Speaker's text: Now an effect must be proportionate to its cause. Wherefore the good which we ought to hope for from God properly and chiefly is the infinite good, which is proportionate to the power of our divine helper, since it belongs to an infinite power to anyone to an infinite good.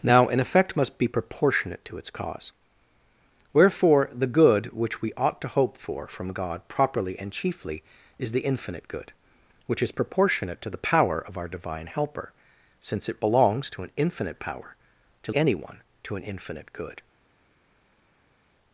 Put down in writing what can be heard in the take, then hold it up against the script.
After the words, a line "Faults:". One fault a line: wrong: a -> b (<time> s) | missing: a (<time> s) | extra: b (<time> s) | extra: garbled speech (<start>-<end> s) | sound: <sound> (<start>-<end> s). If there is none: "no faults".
Now an effect must be proportionate to its cause. Wherefore the good which we ought to hope for from God properly and chiefly is the infinite good, which is proportionate to the power of our divine helper, since it belongs to an infinite power to anyone to an infinite good.
Faults:
no faults